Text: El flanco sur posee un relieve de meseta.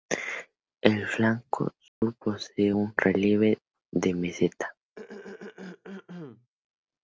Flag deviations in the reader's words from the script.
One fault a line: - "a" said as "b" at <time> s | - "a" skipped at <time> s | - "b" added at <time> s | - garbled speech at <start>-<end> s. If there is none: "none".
none